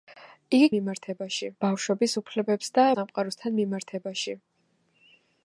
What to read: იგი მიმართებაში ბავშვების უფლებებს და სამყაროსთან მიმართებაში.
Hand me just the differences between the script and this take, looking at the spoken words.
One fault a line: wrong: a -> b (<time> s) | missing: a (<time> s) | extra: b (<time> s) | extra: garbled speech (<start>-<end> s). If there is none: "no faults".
no faults